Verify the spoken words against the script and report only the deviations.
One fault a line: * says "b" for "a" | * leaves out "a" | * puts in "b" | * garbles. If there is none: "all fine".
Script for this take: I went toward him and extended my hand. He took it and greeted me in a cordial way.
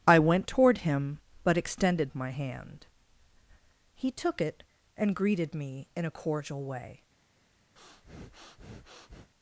* says "but" for "and"